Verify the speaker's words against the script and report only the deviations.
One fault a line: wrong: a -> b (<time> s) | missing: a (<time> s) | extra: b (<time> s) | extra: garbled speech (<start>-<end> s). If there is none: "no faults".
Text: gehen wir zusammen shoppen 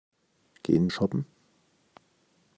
missing: wir zusammen (0.9 s)